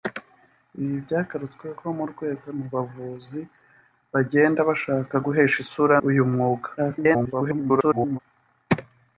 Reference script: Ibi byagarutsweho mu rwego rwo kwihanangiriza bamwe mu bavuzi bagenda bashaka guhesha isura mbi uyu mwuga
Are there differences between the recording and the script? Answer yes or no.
yes